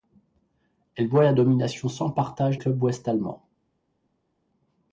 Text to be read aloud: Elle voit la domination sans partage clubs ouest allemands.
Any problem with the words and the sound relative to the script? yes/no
no